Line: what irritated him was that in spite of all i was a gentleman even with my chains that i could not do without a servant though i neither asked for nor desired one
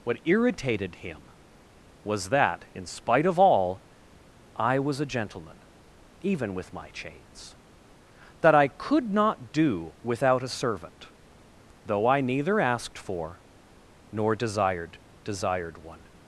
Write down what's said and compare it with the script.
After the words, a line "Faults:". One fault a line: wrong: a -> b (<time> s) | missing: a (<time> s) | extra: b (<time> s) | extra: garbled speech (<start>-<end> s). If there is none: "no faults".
what irritated him was that in spite of all i was a gentleman even with my chains that i could not do without a servant though i neither asked for nor desired desired one
Faults:
extra: desired (15.2 s)